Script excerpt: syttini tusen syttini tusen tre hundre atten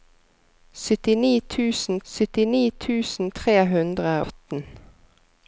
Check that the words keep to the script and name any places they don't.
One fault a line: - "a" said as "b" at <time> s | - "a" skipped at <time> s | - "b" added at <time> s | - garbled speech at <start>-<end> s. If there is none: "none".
none